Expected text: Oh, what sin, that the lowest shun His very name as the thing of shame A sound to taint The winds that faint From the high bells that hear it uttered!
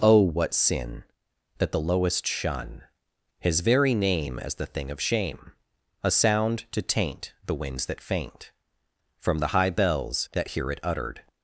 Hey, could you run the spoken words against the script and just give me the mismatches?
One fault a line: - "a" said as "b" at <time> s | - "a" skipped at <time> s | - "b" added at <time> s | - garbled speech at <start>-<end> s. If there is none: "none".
none